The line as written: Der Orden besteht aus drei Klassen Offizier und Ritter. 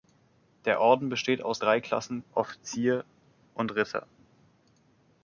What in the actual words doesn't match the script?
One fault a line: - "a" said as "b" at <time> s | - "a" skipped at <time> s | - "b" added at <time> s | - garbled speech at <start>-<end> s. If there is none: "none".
none